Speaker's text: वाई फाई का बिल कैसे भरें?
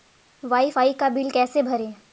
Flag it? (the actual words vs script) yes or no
no